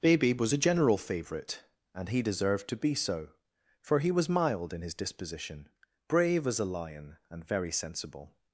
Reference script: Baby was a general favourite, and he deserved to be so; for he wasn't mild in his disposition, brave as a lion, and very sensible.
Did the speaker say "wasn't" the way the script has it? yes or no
no